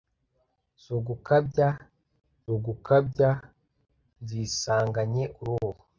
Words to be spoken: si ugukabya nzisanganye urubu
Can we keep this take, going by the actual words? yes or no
no